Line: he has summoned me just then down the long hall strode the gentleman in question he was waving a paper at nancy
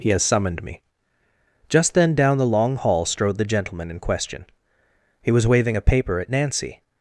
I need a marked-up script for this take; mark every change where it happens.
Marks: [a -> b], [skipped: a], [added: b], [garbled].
he has summoned me just then down the long hall strode the gentleman in question he was waving a paper at nancy